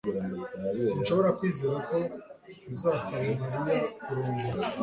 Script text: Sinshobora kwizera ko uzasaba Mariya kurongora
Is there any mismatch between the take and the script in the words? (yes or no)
no